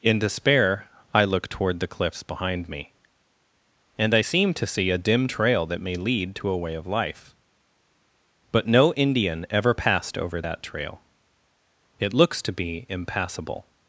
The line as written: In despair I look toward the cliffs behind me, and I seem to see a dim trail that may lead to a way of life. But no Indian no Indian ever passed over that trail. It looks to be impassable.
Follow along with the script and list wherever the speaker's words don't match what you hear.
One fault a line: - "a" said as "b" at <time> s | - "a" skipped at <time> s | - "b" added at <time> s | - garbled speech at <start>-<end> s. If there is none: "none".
- "no Indian" skipped at 9.4 s